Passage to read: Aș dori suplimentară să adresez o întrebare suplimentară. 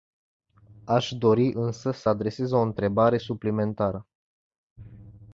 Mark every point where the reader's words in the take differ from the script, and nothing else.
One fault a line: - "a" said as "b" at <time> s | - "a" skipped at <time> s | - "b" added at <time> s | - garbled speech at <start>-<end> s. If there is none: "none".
- "suplimentară" said as "însă" at 1.5 s